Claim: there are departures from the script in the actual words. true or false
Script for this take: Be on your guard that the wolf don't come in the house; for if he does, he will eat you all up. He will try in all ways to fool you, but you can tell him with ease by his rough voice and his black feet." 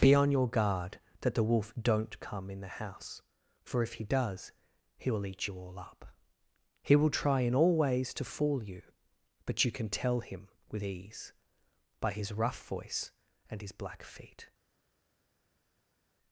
false